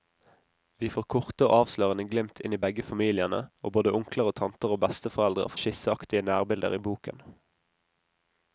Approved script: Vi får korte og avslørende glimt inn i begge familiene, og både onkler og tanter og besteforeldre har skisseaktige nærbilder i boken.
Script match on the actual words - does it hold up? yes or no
yes